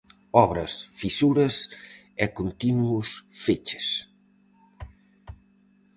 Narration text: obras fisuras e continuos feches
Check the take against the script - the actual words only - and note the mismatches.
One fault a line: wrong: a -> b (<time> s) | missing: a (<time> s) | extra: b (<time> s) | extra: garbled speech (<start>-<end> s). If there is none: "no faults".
no faults